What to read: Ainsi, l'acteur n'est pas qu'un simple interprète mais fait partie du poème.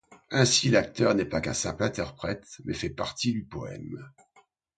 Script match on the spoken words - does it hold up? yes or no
yes